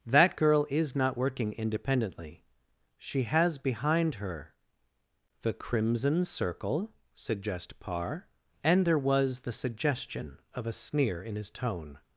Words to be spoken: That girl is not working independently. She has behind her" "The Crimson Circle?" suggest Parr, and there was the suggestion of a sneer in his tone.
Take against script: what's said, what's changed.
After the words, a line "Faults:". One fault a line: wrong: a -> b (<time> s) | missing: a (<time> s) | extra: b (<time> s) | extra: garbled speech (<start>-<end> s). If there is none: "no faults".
That girl is not working independently. She has behind her" "The Crimson Circle?" suggest Parr, and there was the suggestion of a sneer in his tone.
Faults:
no faults